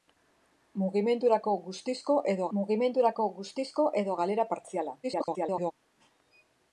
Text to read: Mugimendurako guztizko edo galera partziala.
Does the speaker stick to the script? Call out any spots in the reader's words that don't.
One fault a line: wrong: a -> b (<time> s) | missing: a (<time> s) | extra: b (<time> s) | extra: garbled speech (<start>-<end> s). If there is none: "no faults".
extra: mugimendurako guztizko edo (2.6 s)
extra: garbled speech (5.0-5.7 s)